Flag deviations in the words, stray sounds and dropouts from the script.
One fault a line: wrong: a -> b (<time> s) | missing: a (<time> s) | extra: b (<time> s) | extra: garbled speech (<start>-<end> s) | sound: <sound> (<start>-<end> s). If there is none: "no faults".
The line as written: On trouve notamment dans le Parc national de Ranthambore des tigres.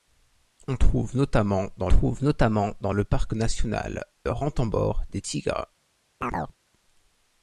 extra: trouve notamment dans (1.9 s)
missing: de (4.1 s)
sound: chirp (6.2-6.6 s)